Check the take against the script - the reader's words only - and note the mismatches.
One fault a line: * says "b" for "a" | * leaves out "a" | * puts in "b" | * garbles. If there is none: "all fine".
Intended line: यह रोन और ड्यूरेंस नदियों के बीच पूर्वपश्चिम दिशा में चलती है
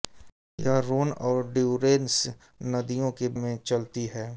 * leaves out "बीच पूर्वपश्चिम दिशा"